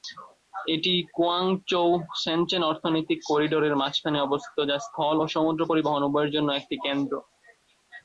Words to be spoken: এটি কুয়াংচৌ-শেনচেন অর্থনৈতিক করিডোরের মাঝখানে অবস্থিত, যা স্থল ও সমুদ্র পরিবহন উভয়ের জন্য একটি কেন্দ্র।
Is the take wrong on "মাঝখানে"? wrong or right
right